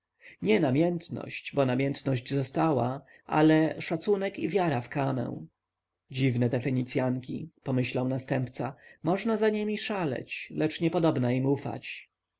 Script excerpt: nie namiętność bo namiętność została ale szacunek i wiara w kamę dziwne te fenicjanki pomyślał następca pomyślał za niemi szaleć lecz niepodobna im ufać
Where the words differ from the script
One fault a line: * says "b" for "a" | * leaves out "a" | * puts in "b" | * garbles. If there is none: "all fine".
* says "można" for "pomyślał"